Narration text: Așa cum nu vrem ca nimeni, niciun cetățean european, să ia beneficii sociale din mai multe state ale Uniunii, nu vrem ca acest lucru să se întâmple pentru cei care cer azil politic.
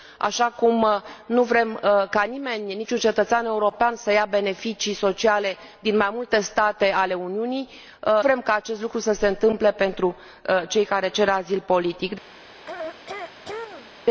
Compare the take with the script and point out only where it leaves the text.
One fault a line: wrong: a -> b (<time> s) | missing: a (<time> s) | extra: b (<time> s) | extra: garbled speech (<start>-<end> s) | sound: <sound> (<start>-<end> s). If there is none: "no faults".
missing: nu (7.7 s)
sound: throat clearing (12.7-14.0 s)